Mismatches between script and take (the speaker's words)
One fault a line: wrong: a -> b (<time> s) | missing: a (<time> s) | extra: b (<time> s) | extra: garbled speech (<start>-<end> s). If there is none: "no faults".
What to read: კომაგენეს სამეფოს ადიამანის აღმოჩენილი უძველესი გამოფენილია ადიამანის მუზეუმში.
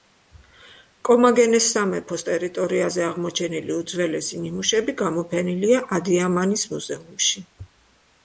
wrong: ადიამანის -> ტერიტორიაზე (2.3 s)
extra: ნიმუშები (4.4 s)